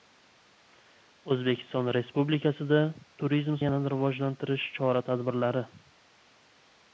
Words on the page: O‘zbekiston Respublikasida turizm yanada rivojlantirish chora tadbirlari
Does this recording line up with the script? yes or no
yes